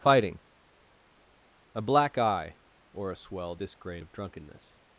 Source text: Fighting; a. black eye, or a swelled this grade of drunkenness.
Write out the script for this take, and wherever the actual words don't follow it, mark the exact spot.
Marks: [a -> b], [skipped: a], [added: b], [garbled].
Fighting; a. black eye, or a swelled this grade of drunkenness.